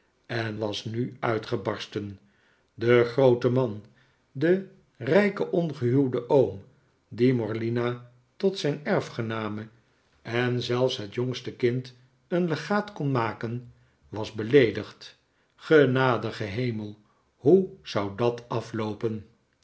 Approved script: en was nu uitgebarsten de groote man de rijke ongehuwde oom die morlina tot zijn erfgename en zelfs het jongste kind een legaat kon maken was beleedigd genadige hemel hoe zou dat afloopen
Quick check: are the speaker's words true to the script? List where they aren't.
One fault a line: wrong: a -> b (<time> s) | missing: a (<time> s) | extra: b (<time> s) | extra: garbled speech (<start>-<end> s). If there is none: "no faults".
no faults